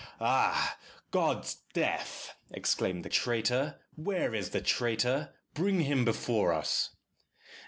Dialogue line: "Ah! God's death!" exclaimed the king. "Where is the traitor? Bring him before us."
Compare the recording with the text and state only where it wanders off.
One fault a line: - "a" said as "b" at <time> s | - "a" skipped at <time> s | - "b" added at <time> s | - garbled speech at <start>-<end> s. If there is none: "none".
- "king" said as "traitor" at 3.1 s